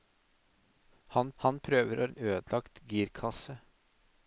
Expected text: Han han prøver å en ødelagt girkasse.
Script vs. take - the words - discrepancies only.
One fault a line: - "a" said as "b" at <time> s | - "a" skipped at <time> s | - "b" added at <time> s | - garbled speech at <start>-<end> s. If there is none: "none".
none